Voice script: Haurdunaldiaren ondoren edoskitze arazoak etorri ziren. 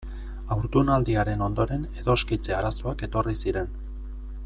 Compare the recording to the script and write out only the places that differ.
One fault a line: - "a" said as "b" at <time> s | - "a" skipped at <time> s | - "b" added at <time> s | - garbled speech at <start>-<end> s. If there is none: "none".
none